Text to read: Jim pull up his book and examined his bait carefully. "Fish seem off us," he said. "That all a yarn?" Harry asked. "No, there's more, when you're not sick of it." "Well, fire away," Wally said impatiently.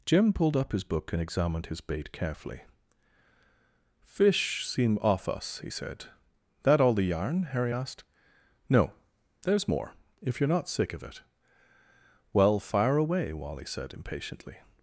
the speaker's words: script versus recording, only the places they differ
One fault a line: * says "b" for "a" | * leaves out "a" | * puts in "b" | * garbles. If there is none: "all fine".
* says "pulled" for "pull"
* says "the" for "a"
* says "if" for "when"